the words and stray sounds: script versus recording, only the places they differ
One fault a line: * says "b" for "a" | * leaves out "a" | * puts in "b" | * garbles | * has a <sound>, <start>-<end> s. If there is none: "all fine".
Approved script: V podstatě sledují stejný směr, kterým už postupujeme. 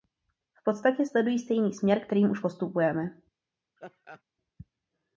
* has a laugh, 3.8-4.2 s